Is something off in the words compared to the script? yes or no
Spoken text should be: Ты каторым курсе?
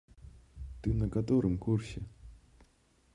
yes